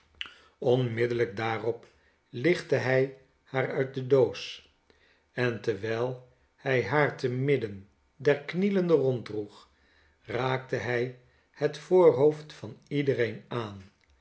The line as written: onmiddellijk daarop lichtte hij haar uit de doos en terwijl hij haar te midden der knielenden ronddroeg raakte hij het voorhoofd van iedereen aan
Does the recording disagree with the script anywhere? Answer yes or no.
no